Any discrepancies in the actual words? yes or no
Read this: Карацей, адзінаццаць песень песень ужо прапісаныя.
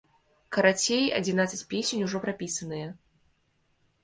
yes